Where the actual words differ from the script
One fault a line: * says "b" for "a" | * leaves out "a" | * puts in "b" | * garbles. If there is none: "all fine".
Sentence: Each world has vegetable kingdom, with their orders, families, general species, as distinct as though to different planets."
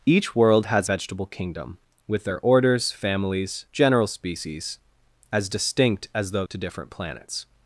all fine